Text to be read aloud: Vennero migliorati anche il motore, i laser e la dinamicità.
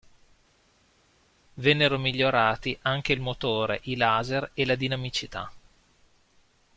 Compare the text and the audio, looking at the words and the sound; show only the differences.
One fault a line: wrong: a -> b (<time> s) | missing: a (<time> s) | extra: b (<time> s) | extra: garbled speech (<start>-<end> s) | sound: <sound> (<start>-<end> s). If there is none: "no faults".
no faults